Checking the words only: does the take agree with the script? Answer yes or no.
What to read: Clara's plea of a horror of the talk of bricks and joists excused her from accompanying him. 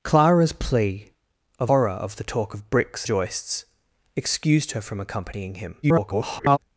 no